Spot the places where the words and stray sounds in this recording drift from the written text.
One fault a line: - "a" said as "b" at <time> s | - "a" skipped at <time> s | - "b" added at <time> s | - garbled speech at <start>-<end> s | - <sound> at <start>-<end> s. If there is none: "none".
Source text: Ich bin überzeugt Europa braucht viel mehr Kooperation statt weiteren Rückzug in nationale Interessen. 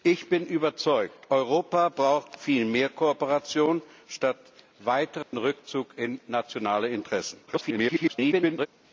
- dropout at 5.2-5.3 s
- garbled speech at 7.5-8.7 s